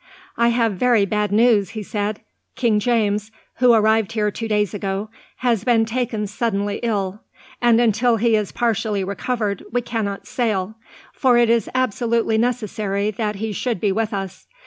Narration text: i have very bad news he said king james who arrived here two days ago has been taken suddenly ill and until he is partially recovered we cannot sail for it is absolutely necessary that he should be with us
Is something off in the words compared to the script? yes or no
no